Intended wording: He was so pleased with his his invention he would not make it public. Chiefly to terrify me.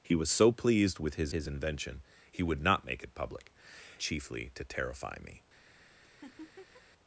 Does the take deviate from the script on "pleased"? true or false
false